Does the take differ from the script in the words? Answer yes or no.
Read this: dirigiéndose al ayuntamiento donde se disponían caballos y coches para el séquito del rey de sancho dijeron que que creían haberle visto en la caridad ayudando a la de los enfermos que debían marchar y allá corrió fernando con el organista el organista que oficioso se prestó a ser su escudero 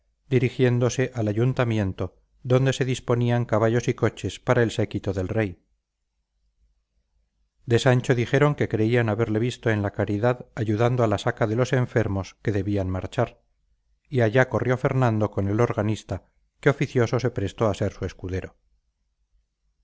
yes